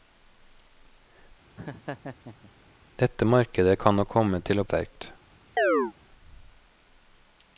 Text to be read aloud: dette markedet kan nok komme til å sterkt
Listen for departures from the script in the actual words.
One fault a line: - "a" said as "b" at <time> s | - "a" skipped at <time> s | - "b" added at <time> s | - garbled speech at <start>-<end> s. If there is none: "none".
none